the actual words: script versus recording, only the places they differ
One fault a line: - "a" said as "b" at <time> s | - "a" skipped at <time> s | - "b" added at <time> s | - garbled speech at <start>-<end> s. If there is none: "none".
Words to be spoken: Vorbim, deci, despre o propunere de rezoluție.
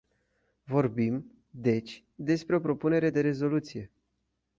none